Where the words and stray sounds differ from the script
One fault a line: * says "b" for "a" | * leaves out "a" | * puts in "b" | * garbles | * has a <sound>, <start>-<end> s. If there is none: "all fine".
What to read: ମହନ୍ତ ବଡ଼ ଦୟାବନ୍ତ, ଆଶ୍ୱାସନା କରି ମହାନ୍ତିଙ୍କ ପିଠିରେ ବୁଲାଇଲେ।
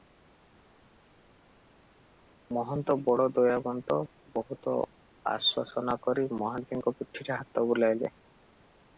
* puts in "ବହୁତ"
* puts in "ହାତ"